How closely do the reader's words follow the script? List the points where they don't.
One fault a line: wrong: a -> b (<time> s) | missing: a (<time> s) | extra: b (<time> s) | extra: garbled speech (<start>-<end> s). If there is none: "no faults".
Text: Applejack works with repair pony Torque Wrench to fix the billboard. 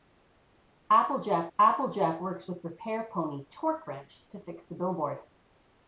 extra: applejack (1.6 s)